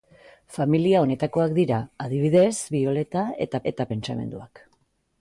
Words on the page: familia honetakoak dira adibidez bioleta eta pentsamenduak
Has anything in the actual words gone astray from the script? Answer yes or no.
yes